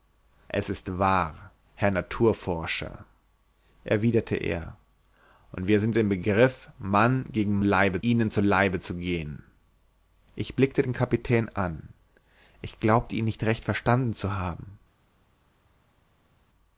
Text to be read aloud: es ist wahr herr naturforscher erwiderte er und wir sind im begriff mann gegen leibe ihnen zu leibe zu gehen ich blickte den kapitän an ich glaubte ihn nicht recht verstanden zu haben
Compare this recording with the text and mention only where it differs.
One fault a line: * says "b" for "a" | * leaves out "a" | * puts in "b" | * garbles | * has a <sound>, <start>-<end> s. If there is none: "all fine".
all fine